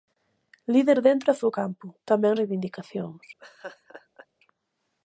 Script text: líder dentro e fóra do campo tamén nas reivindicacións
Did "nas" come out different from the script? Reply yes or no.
yes